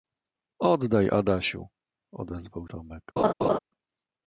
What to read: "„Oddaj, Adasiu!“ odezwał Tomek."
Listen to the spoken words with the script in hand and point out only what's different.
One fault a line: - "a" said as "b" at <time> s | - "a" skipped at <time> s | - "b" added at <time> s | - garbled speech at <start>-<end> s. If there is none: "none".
none